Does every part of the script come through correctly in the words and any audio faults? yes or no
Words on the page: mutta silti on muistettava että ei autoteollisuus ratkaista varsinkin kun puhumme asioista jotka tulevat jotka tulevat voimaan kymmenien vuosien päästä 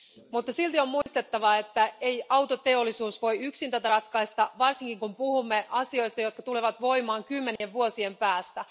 no